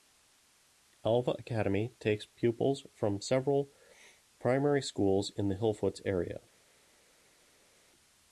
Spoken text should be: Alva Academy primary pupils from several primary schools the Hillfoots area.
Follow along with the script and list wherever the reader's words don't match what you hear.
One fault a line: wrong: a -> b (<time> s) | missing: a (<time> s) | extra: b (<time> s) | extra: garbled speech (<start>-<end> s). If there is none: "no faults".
wrong: primary -> takes (2.0 s)
extra: in (5.4 s)